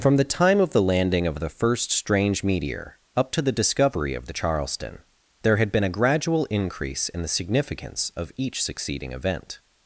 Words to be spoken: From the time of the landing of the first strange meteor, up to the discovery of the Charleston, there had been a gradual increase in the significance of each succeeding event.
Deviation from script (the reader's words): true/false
false